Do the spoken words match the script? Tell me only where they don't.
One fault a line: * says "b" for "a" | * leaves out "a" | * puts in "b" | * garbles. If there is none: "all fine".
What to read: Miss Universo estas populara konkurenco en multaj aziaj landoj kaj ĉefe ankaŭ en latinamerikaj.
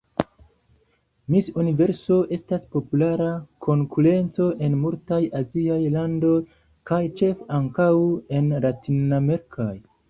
all fine